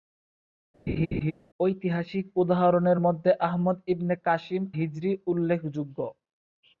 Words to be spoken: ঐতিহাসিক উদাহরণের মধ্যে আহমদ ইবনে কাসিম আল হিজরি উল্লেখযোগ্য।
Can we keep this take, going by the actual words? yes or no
no